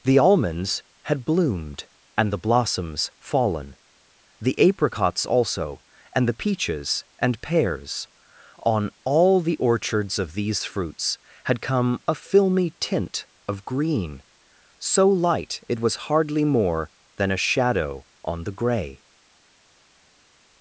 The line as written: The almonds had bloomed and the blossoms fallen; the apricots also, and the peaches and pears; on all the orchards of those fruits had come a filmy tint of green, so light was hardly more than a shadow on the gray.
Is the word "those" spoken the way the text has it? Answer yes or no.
no